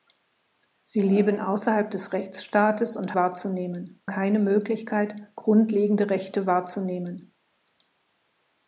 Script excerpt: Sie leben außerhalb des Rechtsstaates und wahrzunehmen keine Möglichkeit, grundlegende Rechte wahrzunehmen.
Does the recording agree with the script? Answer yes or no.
yes